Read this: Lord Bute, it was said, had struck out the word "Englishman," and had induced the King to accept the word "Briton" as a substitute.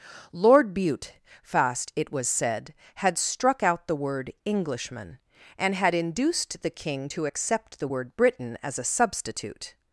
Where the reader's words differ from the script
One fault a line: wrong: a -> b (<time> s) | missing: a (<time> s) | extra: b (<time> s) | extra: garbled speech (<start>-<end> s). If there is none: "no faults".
extra: fast (1.4 s)